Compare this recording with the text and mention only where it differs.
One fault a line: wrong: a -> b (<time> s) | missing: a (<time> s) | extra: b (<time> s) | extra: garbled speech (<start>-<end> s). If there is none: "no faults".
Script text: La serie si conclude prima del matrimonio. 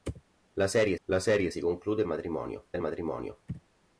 extra: la serie (1.0 s)
wrong: prima -> matrimonio (2.1 s)